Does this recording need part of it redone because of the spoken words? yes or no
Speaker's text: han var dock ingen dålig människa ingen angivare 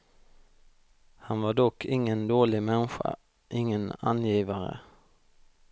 no